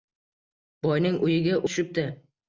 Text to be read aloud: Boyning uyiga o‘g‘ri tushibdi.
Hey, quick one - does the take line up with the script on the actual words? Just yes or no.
no